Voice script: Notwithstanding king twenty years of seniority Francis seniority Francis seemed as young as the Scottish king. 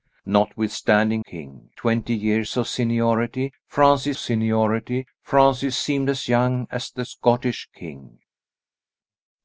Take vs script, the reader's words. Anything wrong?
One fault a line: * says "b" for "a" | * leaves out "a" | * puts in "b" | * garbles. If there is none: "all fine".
all fine